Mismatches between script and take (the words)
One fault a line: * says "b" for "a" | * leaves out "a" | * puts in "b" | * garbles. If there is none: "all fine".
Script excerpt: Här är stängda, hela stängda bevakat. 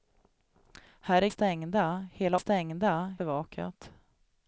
all fine